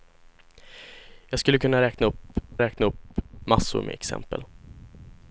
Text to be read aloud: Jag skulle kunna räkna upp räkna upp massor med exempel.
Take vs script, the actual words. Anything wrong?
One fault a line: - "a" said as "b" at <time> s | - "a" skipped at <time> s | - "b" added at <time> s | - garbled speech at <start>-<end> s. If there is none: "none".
none